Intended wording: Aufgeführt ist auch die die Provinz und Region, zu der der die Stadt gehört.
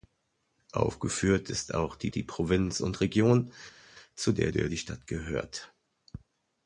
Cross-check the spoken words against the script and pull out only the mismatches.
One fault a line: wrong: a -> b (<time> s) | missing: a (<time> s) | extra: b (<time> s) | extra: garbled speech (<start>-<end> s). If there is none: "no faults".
no faults